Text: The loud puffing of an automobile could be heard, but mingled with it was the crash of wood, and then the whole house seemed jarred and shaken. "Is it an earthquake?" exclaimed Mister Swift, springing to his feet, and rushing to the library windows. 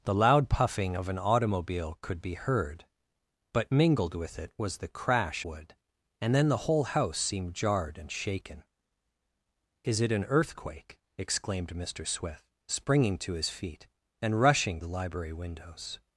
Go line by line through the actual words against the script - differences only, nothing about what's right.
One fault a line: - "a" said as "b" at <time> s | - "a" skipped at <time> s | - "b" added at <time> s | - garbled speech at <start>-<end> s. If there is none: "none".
- "of" skipped at 5.5 s
- "to" skipped at 14.8 s